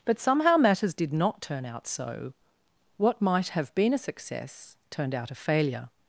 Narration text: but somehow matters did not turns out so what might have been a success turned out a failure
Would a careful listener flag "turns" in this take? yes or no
yes